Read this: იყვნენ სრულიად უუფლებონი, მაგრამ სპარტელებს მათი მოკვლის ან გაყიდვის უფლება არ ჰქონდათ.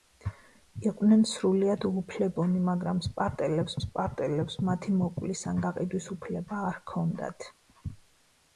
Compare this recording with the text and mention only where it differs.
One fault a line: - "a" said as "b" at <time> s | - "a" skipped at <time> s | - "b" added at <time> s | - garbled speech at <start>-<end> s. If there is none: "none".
- "სპარტელებს" added at 3.9 s